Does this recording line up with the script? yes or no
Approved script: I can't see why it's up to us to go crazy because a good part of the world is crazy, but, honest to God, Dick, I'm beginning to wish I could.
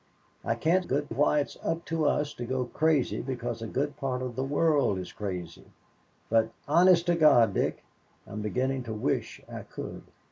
no